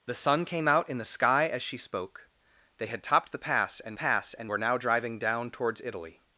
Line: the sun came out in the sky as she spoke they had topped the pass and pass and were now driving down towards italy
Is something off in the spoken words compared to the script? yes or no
no